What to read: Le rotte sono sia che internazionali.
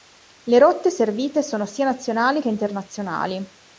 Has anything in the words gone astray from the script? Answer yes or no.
yes